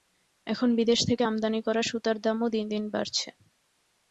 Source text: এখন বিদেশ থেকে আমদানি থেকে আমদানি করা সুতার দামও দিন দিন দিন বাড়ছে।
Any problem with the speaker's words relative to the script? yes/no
yes